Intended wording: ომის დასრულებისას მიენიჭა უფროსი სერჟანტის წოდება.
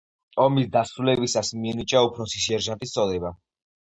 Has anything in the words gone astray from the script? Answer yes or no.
no